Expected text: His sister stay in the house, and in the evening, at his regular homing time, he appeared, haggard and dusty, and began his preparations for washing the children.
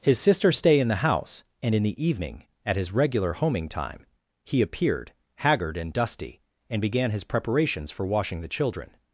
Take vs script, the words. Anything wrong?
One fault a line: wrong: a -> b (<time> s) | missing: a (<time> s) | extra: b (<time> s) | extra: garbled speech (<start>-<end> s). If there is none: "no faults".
no faults